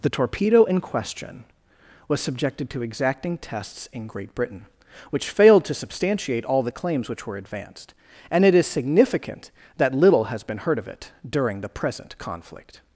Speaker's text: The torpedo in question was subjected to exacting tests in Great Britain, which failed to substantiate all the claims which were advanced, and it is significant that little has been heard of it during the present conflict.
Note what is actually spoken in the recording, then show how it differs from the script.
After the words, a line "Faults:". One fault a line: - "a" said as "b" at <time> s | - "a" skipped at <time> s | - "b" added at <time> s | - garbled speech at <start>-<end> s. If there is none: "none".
The torpedo in question was subjected to exacting tests in Great Britain, which failed to substantiate all the claims which were advanced, and it is significant that little has been heard of it during the present conflict.
Faults:
none